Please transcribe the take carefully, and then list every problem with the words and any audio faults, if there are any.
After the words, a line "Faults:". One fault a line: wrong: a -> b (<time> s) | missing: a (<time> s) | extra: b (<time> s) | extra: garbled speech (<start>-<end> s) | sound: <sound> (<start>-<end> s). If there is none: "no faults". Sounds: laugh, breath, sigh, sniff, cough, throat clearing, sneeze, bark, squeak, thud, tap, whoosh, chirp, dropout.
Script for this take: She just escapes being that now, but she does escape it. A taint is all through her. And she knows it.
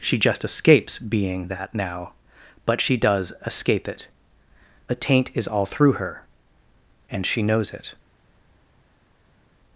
She just escapes being that now, but she does escape it. A taint is all through her. And she knows it.
Faults:
no faults